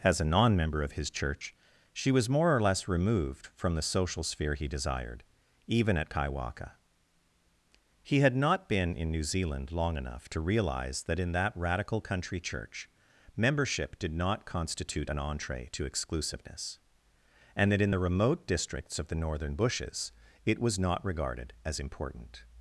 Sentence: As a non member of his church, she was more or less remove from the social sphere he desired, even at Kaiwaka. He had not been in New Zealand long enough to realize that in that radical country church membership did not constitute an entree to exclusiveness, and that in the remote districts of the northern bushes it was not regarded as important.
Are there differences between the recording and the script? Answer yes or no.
yes